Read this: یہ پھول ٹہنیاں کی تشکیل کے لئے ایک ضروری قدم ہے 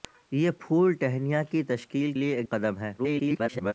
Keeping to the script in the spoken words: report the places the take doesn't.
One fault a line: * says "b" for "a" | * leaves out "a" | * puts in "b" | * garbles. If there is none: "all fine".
* leaves out "کے"
* leaves out "ضروری"
* garbles